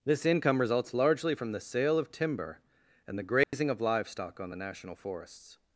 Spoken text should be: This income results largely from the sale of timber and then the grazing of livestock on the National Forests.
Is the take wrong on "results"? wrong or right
right